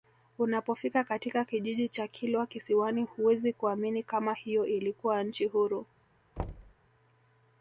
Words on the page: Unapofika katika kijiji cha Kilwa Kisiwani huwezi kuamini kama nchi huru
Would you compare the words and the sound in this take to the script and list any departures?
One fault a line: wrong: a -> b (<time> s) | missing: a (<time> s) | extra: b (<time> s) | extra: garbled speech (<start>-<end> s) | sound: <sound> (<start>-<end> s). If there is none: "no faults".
extra: hiyo ilikuwa (4.3 s)
sound: thud (6.4-6.7 s)